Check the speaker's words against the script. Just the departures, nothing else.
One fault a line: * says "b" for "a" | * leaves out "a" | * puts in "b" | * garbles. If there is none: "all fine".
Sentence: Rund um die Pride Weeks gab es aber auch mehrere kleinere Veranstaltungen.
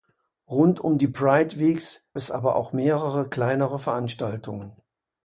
* leaves out "gab"